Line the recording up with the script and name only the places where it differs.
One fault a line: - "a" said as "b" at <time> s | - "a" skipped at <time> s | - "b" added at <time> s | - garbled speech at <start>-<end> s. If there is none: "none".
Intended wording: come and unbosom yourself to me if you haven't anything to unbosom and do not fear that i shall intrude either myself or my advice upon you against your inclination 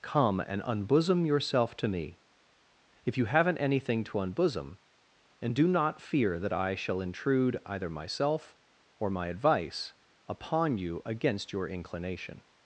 none